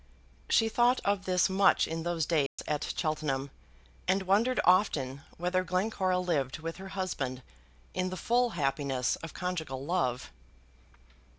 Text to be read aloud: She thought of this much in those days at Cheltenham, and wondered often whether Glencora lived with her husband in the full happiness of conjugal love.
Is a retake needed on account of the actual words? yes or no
no